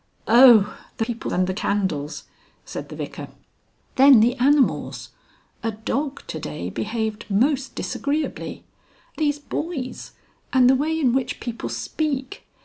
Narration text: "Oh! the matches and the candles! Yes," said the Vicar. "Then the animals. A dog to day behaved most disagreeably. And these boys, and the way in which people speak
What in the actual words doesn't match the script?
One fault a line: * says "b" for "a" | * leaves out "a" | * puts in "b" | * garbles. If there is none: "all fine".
* says "people" for "matches"
* leaves out "Yes"
* leaves out "And"